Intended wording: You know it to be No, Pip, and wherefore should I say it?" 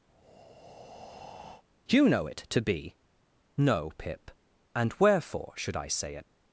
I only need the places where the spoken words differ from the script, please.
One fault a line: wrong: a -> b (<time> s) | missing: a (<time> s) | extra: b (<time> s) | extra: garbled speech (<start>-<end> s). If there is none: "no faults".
no faults